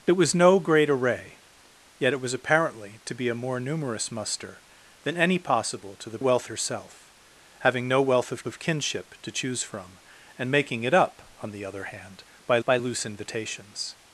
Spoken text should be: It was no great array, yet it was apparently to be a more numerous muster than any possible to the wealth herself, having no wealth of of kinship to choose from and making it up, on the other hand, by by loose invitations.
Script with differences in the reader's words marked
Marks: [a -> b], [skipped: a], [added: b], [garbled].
It was no great array, yet it was apparently to be a more numerous muster than any possible to the wealth herself, having no wealth of of kinship to choose from and making it up, on the other hand, by by loose invitations.